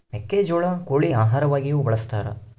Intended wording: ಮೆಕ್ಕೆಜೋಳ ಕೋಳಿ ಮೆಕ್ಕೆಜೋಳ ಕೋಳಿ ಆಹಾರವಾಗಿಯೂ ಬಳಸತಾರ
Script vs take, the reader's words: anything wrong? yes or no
yes